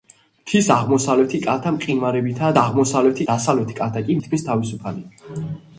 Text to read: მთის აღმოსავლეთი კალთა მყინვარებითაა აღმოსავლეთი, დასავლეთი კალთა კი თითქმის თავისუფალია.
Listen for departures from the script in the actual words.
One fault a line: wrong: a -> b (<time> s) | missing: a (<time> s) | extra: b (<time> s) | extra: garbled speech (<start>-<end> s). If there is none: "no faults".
no faults